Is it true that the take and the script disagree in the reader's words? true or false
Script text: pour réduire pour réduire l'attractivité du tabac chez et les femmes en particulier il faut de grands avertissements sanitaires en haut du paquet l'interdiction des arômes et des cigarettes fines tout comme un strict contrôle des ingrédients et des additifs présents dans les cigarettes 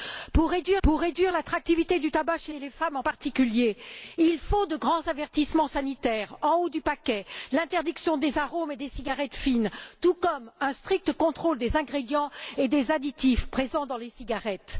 false